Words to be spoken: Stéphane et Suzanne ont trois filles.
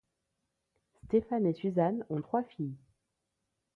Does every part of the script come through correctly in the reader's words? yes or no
yes